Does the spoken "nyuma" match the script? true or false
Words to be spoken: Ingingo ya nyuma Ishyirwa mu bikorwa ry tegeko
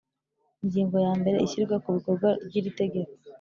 false